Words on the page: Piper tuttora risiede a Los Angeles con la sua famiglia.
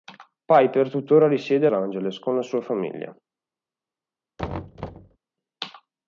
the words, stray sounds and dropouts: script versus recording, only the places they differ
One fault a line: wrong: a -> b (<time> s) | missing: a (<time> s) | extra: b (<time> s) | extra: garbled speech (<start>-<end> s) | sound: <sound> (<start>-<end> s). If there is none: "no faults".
missing: Los (1.7 s)
sound: thud (4.4-5.2 s)